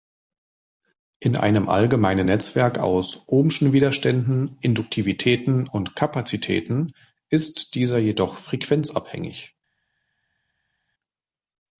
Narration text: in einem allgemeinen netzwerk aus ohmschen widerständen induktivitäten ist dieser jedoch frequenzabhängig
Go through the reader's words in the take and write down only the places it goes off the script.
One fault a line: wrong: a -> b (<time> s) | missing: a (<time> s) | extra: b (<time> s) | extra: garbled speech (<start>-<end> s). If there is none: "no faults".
extra: und kapazitäten (5.7 s)